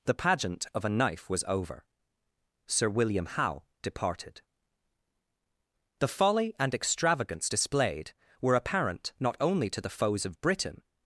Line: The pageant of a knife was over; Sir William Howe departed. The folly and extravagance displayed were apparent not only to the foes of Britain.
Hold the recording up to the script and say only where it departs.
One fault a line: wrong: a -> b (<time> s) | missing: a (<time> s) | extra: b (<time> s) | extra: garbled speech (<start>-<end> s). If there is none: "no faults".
no faults